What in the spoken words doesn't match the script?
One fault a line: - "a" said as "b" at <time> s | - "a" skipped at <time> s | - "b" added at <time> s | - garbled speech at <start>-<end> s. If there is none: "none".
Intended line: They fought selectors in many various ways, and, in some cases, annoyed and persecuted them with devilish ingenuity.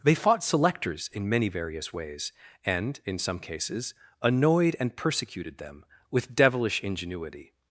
none